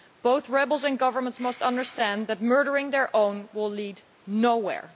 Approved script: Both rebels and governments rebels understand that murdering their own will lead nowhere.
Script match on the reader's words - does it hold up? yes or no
no